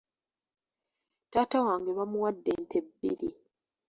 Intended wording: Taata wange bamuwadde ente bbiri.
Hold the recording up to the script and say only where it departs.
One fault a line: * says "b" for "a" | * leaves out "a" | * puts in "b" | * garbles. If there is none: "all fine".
all fine